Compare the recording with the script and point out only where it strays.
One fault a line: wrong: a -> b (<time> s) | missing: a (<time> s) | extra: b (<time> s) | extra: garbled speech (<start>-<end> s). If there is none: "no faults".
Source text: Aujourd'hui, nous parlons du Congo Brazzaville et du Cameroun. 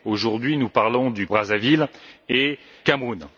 missing: Congo (1.3 s)
missing: du (2.6 s)